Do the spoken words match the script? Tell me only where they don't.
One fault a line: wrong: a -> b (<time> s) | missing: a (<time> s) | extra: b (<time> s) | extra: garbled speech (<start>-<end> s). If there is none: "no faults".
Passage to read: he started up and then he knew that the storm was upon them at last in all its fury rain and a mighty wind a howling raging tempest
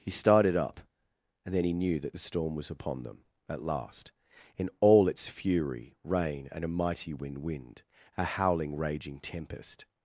extra: wind (7.4 s)